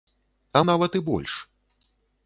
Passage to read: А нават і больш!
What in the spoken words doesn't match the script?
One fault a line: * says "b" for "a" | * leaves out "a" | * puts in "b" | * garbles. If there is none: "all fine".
all fine